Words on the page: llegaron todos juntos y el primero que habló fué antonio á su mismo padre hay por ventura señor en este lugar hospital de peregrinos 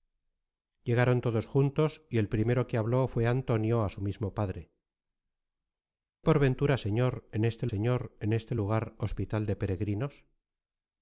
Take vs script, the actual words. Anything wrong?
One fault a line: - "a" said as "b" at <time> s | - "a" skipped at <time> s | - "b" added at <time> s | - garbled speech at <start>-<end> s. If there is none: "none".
- "hay" skipped at 4.7 s
- "señor en este" added at 7.7 s